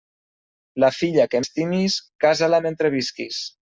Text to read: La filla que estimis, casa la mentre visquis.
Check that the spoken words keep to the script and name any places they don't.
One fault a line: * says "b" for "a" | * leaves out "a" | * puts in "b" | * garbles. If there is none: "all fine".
all fine